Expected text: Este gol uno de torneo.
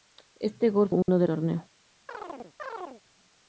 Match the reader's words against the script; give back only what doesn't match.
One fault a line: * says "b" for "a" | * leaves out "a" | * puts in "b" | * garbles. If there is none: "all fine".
all fine